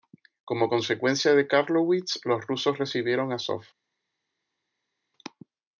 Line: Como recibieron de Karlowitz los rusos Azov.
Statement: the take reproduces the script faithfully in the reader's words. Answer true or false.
false